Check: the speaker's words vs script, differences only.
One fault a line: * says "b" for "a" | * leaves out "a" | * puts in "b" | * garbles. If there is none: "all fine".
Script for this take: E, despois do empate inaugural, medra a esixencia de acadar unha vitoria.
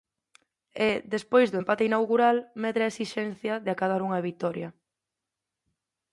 all fine